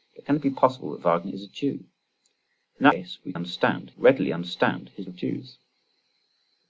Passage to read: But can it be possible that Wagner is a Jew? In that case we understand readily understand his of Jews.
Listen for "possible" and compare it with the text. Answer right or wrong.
right